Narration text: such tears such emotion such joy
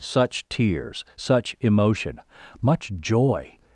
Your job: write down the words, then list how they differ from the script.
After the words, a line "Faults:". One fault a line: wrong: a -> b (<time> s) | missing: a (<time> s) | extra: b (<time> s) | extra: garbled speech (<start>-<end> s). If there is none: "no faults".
such tears such emotion much joy
Faults:
wrong: such -> much (2.6 s)